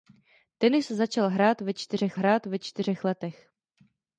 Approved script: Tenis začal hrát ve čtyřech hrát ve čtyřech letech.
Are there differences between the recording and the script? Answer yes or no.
no